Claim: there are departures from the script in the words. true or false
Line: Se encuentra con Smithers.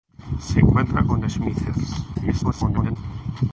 true